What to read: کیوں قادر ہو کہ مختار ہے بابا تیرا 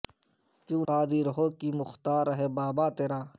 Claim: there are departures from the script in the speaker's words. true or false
false